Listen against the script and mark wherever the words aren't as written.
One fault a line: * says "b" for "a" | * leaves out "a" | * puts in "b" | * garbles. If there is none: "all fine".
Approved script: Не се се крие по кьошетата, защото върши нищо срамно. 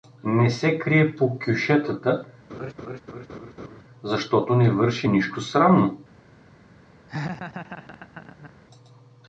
* leaves out "се"
* puts in "не"